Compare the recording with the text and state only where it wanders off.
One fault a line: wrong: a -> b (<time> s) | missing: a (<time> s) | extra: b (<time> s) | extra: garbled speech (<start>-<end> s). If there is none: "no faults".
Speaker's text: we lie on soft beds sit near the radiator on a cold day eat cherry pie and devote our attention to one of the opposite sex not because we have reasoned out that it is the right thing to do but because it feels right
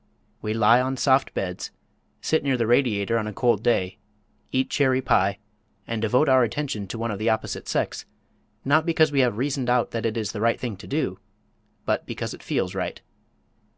no faults